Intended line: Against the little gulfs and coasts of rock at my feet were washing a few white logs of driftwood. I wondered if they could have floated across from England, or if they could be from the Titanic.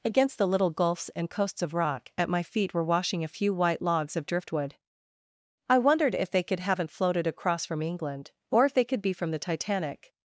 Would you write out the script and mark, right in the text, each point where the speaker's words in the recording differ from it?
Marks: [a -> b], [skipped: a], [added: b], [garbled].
Against the little gulfs and coasts of rock at my feet were washing a few white logs of driftwood. I wondered if they could [have -> haven't] floated across from England, or if they could be from the Titanic.